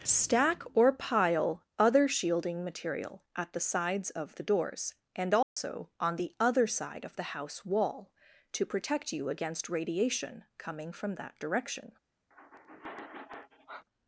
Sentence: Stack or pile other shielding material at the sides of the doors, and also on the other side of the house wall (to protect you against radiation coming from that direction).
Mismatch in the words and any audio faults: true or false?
true